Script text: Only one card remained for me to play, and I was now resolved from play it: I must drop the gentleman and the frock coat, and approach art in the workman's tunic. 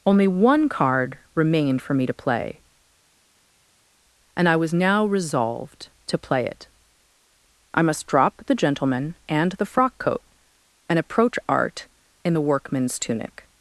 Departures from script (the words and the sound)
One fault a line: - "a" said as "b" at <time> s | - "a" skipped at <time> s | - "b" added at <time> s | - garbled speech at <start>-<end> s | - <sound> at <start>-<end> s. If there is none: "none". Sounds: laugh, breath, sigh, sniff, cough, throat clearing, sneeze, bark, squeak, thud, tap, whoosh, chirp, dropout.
- "from" said as "to" at 6.1 s